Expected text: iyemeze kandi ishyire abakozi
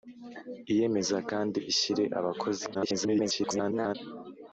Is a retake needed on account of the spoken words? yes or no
yes